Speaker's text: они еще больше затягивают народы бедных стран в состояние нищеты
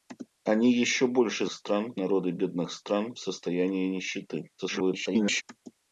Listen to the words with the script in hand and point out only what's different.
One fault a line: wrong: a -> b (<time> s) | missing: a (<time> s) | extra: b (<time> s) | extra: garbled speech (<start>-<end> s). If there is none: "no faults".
wrong: затягивают -> стран (1.5 s)
extra: garbled speech (4.6-5.4 s)